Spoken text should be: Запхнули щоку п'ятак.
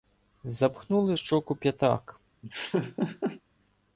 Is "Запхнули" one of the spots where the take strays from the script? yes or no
no